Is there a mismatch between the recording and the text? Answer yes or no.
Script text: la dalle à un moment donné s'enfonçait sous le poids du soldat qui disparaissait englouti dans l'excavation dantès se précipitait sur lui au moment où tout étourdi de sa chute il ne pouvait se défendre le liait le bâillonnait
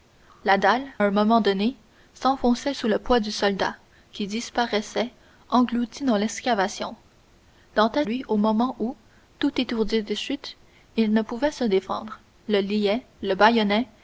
yes